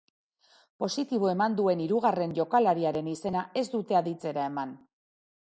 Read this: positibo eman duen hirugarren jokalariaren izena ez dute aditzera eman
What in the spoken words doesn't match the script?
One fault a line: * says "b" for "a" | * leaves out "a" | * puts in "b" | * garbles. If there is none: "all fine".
all fine